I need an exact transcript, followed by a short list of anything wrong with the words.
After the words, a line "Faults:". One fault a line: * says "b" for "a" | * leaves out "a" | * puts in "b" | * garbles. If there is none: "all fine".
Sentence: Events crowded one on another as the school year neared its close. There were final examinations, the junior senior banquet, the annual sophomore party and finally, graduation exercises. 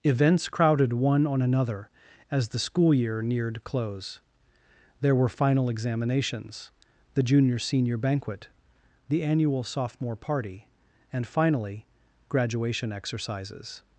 Events crowded one on another as the school year neared close. There were final examinations, the junior senior banquet, the annual sophomore party and finally, graduation exercises.
Faults:
* leaves out "its"